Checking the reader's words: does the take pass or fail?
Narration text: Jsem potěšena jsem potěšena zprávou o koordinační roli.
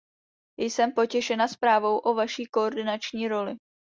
fail